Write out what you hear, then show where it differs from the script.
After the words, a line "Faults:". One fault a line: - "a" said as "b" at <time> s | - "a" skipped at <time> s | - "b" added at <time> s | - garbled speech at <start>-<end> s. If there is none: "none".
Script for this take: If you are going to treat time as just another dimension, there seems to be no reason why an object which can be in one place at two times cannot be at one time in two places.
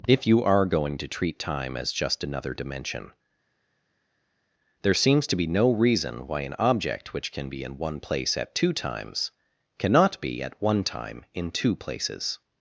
If you are going to treat time as just another dimension, there seems to be no reason why an object which can be in one place at two times cannot be at one time in two places.
Faults:
none